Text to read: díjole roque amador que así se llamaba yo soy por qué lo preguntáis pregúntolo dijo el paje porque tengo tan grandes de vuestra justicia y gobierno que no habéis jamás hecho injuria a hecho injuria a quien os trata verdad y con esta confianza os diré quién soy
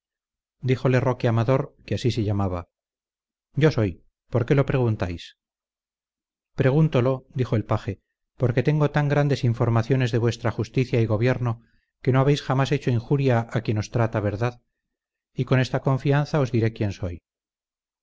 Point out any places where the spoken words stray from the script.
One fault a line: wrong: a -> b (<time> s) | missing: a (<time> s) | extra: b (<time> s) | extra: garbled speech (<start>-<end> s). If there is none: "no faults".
extra: informaciones (9.4 s)
missing: hecho injuria a (13.6 s)